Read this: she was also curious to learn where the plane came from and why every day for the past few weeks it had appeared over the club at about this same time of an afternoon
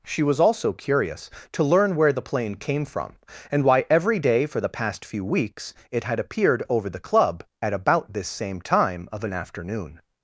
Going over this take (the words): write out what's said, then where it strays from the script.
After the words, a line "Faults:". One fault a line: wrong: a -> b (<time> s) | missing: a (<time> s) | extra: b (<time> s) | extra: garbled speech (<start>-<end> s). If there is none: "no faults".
she was also curious to learn where the plane came from and why every day for the past few weeks it had appeared over the club at about this same time of an afternoon
Faults:
no faults